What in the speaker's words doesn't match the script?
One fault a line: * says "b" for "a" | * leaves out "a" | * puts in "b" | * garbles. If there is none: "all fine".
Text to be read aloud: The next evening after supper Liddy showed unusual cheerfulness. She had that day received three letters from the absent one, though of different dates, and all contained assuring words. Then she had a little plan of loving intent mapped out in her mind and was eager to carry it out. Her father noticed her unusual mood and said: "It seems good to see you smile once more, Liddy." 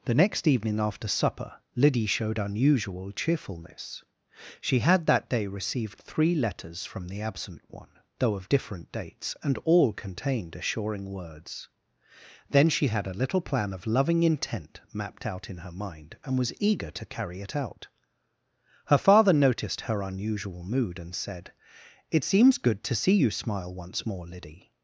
all fine